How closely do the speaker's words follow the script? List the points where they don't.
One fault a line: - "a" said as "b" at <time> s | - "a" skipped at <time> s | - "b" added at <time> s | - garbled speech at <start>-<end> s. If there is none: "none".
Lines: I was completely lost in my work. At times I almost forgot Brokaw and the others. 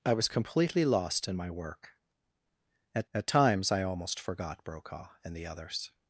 - "at" added at 3.1 s